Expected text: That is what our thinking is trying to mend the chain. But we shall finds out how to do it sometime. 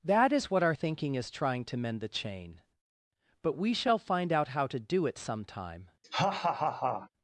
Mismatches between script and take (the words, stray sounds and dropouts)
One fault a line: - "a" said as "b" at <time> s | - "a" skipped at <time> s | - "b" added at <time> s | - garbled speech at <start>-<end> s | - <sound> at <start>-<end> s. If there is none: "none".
- "finds" said as "find" at 4.0 s
- laugh at 6.0-7.1 s